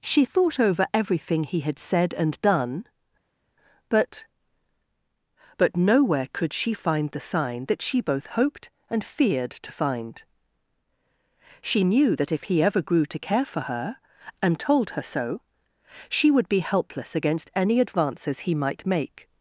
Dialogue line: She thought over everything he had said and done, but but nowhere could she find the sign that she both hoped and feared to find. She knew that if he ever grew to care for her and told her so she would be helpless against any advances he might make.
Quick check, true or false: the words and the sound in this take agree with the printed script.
true